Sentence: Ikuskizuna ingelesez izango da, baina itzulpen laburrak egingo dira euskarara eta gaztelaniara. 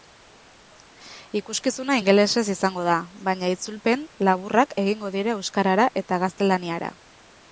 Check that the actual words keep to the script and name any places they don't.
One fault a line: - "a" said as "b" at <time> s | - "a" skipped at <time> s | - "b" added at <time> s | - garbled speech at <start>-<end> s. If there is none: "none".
none